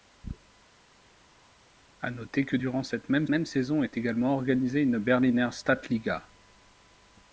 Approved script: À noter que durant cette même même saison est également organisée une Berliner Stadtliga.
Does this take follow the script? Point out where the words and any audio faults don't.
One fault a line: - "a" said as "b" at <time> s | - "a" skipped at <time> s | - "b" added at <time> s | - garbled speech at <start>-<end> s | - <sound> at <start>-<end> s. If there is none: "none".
none